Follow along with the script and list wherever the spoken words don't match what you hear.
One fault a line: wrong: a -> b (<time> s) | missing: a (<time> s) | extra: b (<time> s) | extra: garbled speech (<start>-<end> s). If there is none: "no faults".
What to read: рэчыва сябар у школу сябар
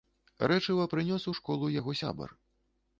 wrong: сябар -> прынёс (0.9 s)
extra: яго (1.8 s)